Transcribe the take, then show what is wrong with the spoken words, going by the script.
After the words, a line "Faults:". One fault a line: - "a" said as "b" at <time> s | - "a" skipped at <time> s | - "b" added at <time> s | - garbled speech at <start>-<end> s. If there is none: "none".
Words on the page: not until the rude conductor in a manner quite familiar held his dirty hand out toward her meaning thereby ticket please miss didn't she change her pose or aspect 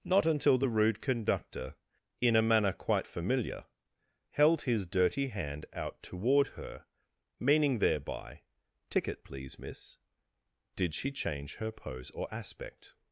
not until the rude conductor in a manner quite familiar held his dirty hand out toward her meaning thereby ticket please miss did she change her pose or aspect
Faults:
- "didn't" said as "did" at 10.8 s